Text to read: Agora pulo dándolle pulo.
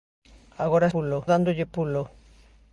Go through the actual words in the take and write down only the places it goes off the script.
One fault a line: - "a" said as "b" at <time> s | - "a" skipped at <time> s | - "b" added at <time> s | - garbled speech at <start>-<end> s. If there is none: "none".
none